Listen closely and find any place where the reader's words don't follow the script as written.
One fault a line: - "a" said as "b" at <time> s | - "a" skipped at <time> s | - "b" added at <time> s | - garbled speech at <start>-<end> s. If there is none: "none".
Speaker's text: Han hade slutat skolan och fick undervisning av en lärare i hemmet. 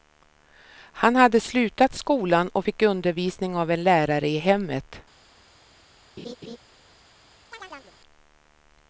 none